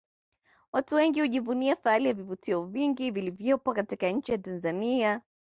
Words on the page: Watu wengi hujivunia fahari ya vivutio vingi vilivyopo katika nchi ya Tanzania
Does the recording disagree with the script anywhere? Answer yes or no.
no